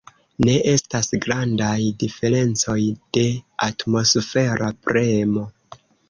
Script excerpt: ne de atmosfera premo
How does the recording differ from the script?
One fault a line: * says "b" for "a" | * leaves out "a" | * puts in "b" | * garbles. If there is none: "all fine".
* puts in "estas grandaj diferencoj"